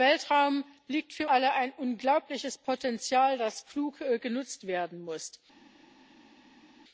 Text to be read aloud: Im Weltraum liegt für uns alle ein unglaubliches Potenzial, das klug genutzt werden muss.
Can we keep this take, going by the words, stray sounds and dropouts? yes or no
no